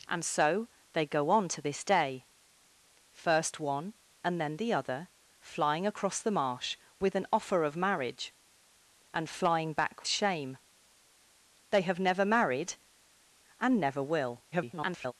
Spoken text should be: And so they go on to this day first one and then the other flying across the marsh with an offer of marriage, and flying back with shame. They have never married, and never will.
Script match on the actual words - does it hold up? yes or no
no